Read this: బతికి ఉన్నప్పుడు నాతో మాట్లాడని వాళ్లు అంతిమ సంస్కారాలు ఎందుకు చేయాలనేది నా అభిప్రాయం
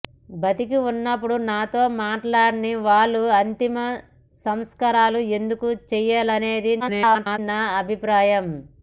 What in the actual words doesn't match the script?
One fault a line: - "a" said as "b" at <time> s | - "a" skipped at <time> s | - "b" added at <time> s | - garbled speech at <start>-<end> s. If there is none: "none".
- garbled speech at 6.8-7.4 s